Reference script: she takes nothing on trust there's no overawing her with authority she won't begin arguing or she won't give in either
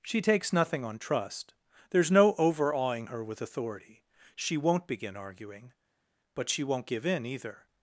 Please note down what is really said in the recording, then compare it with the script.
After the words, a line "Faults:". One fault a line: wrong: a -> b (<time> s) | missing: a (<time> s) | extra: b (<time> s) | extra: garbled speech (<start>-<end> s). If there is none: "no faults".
she takes nothing on trust there's no overawing her with authority she won't begin arguing but she won't give in either
Faults:
wrong: or -> but (6.3 s)